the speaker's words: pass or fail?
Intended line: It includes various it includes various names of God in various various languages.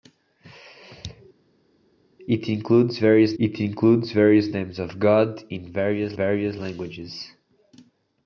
pass